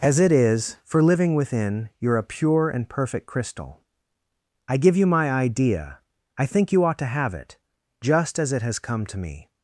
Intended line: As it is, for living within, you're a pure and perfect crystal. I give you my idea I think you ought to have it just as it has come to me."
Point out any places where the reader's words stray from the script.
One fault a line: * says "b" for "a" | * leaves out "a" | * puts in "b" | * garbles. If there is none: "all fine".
all fine